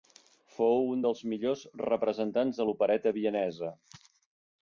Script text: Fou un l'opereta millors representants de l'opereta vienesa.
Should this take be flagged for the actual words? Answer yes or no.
yes